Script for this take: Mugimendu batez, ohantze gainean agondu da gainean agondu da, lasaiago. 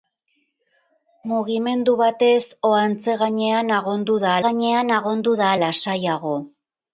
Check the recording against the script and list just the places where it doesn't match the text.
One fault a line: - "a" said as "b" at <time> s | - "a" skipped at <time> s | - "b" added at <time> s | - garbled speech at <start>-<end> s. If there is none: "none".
none